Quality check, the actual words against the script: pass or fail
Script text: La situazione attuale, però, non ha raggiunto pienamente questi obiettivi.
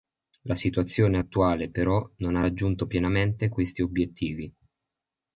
pass